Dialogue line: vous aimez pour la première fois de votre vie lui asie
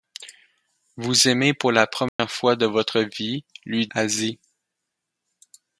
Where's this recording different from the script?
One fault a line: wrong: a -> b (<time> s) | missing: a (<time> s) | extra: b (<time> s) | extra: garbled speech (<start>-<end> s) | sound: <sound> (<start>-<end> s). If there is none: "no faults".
sound: dropout (2.1-2.2 s)